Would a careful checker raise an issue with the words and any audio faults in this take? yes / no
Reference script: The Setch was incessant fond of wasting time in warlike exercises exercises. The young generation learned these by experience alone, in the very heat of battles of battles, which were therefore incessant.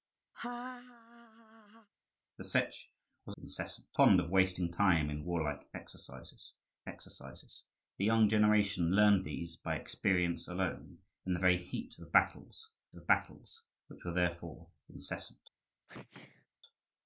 yes